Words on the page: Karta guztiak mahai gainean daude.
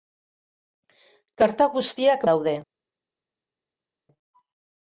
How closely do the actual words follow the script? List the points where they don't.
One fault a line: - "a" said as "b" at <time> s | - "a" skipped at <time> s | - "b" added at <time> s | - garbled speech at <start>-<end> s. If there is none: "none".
- "mahai gainean" skipped at 2.2 s